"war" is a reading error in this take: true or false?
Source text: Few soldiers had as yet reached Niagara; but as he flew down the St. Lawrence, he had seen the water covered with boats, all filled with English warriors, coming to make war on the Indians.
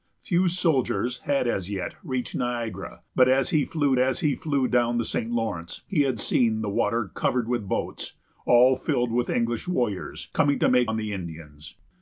true